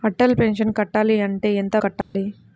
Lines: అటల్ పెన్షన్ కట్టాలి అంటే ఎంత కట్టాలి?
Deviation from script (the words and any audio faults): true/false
true